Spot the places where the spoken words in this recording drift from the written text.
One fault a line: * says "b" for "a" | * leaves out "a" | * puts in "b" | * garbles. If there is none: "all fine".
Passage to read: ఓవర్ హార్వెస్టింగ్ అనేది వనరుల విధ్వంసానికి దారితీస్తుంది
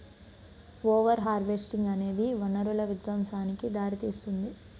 all fine